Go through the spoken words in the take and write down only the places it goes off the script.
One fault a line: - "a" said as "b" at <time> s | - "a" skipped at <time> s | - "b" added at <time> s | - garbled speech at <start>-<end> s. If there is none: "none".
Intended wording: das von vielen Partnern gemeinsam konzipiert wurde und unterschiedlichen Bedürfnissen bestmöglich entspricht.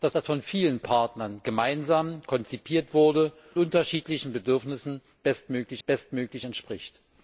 - "das" added at 0.1 s
- "und" skipped at 3.3 s
- "bestmöglich" added at 5.8 s